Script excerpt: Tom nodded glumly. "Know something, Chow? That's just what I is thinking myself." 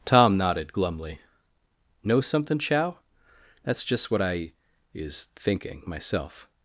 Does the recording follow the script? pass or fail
pass